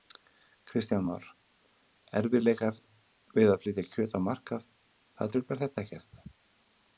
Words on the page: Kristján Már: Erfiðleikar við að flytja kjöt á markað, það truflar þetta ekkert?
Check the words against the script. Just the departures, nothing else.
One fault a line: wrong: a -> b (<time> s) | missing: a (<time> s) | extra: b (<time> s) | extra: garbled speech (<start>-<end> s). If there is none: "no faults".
no faults